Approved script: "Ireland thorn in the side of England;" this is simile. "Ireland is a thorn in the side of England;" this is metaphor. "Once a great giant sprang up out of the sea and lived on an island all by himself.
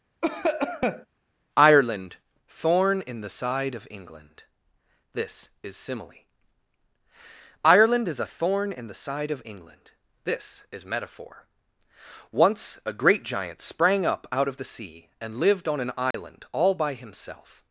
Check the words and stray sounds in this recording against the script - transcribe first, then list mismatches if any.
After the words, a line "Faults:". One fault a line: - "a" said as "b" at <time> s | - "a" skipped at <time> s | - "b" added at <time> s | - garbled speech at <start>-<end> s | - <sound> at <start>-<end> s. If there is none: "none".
"Ireland thorn in the side of England;" this is simile. "Ireland is a thorn in the side of England;" this is metaphor. "Once a great giant sprang up out of the sea and lived on an island all by himself.
Faults:
- cough at 0.2-1.1 s
- dropout at 16.1-16.1 s